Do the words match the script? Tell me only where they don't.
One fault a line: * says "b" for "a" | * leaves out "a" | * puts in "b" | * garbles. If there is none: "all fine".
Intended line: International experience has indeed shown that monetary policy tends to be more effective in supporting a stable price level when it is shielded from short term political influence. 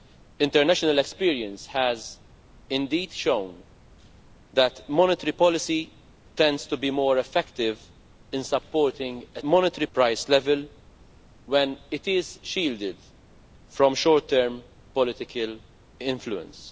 * says "monetary" for "stable"